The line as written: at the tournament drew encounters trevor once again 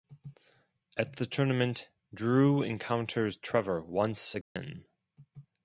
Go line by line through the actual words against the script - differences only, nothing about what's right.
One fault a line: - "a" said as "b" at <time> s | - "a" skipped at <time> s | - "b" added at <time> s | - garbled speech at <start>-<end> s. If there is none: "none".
none